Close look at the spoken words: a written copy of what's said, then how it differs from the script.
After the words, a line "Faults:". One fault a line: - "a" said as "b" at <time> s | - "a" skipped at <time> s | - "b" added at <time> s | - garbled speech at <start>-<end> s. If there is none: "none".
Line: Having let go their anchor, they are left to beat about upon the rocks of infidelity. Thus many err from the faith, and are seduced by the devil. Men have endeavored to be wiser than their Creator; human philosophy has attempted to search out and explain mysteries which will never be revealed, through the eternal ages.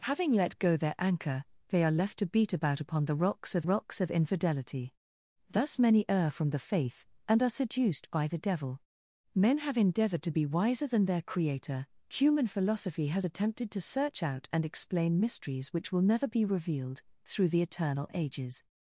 Having let go their anchor, they are left to beat about upon the rocks of rocks of infidelity. Thus many err from the faith, and are seduced by the devil. Men have endeavored to be wiser than their Creator; human philosophy has attempted to search out and explain mysteries which will never be revealed, through the eternal ages.
Faults:
- "rocks of" added at 3.6 s